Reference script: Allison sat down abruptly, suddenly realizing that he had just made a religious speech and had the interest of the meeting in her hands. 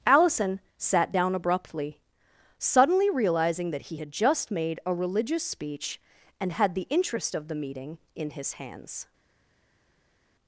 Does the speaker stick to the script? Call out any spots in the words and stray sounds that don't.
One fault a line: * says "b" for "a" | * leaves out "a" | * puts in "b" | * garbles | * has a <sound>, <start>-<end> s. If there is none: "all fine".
* says "his" for "her"